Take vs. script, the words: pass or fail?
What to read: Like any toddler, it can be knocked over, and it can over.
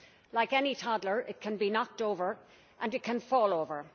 fail